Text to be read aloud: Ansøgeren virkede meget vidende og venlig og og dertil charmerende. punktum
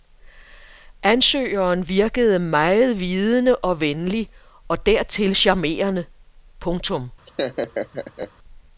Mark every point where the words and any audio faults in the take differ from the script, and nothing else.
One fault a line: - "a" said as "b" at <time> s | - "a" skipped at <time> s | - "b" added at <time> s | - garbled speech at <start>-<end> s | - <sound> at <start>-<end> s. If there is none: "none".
- "og" skipped at 4.8 s
- laugh at 7.3-8.3 s